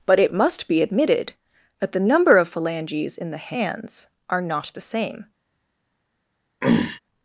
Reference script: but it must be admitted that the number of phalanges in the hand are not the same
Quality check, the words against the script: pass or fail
fail